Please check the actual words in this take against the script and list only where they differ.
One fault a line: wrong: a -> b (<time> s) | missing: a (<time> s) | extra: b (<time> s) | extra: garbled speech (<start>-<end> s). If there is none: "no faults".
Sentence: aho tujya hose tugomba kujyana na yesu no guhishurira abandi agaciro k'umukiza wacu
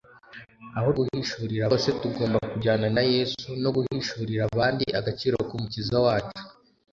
wrong: tujya -> guhishurira (1.0 s)